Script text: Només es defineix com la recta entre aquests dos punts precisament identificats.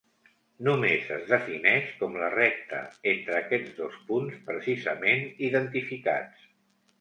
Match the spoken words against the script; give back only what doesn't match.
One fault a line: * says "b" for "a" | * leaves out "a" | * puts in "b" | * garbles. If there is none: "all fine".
all fine